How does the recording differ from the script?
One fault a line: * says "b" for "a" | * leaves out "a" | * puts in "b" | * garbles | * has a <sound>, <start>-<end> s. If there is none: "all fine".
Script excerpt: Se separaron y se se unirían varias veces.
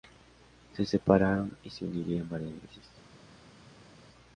* leaves out "se"